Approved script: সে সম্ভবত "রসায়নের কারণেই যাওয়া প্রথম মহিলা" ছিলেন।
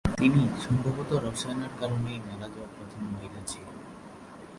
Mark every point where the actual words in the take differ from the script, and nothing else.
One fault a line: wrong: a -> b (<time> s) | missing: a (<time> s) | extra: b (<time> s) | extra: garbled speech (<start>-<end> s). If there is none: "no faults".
wrong: সে -> তিনি (0.2 s)
extra: মারা (2.2 s)